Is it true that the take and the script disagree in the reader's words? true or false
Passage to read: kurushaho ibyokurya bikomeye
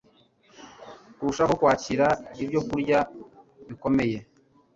true